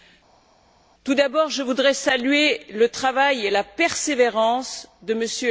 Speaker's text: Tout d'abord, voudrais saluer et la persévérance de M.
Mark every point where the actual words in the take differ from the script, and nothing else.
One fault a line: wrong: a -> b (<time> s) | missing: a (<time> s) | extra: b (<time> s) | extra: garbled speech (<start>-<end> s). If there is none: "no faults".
extra: je (1.5 s)
extra: le travail (2.7 s)